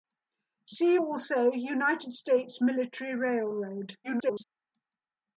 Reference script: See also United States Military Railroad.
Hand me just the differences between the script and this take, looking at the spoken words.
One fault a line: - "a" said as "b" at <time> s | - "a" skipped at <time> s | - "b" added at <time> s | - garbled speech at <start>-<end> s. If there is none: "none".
- garbled speech at 4.0-4.4 s